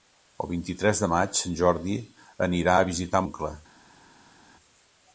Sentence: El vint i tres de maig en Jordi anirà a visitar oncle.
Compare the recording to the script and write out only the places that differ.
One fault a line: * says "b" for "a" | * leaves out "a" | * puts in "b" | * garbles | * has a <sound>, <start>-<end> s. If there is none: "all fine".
all fine